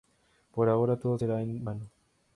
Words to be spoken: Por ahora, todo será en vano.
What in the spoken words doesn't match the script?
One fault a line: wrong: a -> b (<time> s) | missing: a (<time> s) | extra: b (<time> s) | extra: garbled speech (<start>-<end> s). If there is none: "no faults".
no faults